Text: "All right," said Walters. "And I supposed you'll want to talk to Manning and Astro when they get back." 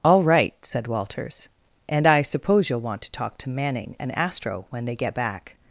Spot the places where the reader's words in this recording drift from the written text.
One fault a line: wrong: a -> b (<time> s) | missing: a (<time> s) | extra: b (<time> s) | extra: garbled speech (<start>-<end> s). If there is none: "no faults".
wrong: supposed -> suppose (2.2 s)